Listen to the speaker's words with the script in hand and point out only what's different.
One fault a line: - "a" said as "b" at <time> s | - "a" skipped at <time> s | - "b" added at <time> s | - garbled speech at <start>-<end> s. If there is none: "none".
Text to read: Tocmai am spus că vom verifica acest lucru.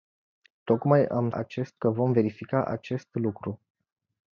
- "spus" said as "acest" at 1.3 s